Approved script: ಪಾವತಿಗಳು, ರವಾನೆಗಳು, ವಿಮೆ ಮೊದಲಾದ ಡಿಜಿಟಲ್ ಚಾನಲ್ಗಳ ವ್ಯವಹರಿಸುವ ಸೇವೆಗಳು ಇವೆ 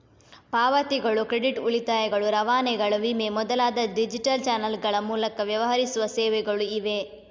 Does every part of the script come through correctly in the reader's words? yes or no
no